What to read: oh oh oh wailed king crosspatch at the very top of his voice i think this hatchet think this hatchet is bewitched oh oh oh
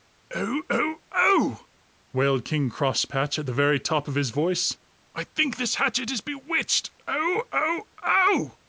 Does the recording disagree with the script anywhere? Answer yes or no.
yes